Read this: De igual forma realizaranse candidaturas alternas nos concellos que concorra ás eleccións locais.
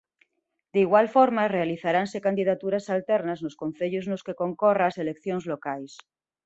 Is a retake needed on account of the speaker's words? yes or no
yes